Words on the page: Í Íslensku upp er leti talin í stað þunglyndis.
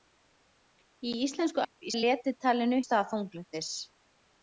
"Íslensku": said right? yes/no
yes